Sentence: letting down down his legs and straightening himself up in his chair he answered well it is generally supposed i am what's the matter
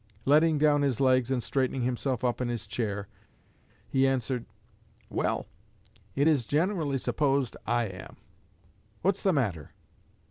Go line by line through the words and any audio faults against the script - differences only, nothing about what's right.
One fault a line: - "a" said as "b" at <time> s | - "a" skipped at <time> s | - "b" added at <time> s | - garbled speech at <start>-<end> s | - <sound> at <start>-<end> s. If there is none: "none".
- "down" skipped at 0.8 s